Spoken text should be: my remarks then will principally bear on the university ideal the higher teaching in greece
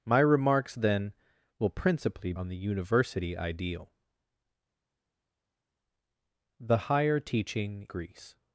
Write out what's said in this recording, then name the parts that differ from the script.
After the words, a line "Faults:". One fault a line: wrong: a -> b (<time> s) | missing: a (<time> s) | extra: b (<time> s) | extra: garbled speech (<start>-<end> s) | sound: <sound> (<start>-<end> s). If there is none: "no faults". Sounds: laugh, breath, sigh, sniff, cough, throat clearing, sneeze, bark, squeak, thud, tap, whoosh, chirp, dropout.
my remarks then will principally on the university ideal the higher teaching greece
Faults:
missing: bear (2.3 s)
missing: in (7.9 s)